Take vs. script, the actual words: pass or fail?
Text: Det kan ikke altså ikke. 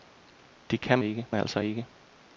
pass